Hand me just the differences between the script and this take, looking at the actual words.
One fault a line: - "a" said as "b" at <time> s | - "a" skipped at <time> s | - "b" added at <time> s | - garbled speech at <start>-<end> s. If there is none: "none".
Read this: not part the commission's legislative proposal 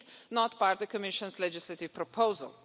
none